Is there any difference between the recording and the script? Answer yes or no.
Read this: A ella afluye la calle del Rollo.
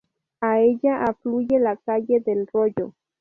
no